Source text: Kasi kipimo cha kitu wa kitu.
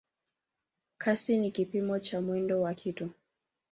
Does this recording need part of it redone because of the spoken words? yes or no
yes